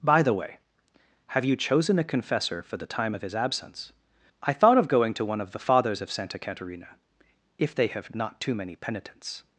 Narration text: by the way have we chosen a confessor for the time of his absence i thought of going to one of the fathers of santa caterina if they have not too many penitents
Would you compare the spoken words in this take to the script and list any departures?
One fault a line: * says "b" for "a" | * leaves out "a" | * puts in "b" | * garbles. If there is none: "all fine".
* says "you" for "we"